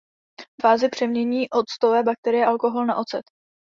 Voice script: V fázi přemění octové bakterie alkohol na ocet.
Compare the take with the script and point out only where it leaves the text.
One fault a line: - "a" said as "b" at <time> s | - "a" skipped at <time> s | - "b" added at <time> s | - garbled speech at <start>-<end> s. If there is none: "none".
none